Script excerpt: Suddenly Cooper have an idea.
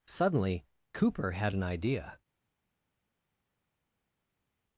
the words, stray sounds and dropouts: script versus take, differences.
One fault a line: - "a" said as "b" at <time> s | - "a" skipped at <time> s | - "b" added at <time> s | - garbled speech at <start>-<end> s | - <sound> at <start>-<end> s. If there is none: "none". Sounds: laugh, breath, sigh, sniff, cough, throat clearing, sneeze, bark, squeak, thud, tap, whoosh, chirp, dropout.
- "have" said as "had" at 1.3 s